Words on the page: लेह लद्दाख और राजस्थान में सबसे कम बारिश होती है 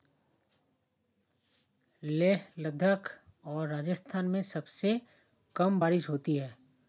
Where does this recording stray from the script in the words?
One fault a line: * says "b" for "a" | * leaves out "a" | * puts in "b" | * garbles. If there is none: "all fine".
all fine